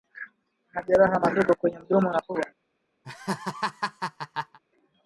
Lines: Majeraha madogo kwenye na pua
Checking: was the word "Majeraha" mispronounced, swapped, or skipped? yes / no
no